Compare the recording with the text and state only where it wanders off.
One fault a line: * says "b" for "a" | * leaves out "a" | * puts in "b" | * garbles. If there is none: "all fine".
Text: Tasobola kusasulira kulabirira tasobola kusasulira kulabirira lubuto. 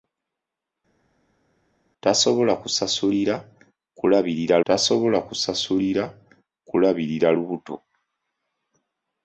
all fine